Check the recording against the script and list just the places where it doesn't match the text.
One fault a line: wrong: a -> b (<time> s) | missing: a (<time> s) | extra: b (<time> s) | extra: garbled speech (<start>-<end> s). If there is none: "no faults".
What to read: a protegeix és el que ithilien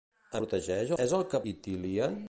no faults